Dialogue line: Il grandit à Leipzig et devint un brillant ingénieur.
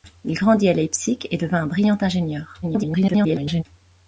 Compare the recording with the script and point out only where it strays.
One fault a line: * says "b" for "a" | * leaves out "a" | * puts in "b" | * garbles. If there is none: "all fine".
* garbles